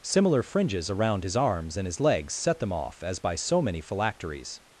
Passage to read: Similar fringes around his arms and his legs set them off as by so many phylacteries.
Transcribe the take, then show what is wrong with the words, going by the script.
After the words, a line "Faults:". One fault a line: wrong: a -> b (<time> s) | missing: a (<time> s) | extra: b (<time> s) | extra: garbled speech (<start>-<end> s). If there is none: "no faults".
Similar fringes around his arms and his legs set them off as by so many phylacteries.
Faults:
no faults